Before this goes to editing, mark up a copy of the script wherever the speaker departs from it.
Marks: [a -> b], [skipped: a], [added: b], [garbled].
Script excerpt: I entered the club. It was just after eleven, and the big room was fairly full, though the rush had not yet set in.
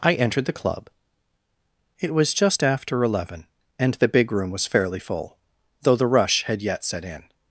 I entered the club. It was just after eleven, and the big room was fairly full, though the rush had [skipped: not] yet set in.